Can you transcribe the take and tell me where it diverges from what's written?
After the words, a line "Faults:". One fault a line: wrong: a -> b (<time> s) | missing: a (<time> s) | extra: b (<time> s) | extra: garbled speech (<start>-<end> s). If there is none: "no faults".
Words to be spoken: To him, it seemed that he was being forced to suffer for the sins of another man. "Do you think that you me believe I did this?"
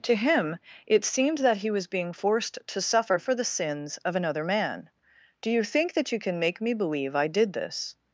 To him, it seemed that he was being forced to suffer for the sins of another man. "Do you think that you can make me believe I did this?"
Faults:
extra: can make (6.2 s)